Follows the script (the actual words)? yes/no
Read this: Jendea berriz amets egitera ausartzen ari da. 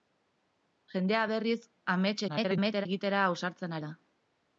no